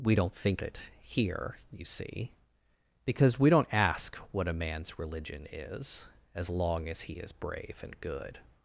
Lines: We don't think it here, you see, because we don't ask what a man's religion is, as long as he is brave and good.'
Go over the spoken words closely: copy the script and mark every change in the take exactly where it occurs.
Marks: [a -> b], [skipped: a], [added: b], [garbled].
We don't think it here, you see, because we don't ask what a man's religion is, as long as he is brave and good.'